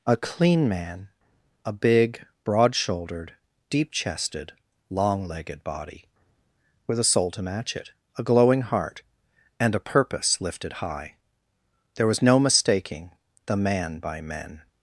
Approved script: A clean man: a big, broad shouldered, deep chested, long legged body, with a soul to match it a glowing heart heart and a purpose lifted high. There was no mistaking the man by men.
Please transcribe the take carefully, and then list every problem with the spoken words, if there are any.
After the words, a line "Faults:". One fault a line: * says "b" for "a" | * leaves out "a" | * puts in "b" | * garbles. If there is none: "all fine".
A clean man: a big, broad shouldered, deep chested, long legged body, with a soul to match it a glowing heart and a purpose lifted high. There was no mistaking the man by men.
Faults:
* leaves out "heart"